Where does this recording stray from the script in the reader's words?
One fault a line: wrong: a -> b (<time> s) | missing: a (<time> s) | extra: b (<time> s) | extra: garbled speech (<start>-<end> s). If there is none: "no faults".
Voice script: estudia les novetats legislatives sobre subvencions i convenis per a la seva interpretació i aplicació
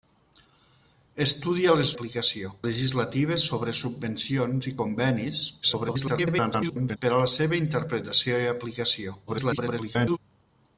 wrong: novetats -> aplicació (1.9 s)
extra: garbled speech (5.6-7.0 s)
extra: garbled speech (9.3-10.2 s)